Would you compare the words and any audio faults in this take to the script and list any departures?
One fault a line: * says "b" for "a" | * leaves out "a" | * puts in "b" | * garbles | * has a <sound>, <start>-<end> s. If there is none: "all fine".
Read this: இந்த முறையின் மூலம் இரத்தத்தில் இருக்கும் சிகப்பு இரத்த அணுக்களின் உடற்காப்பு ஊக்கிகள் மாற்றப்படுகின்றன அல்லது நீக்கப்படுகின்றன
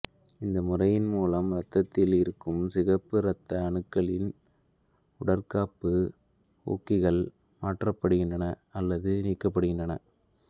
all fine